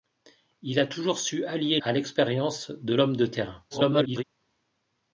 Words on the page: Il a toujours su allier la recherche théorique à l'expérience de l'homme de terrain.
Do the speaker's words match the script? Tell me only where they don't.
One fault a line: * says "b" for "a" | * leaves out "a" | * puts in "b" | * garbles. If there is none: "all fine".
* leaves out "la recherche théorique"
* garbles